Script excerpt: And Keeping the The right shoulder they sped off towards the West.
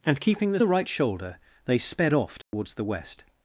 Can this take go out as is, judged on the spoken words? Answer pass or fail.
pass